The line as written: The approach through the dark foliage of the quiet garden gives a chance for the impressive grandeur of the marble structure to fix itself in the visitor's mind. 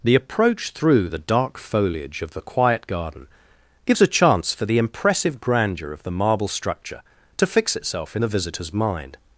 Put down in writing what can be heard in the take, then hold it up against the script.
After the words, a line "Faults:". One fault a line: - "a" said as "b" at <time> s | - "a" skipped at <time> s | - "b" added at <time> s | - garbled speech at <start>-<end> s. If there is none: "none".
The approach through the dark foliage of the quiet garden gives a chance for the impressive grandeur of the marble structure to fix itself in the visitor's mind.
Faults:
none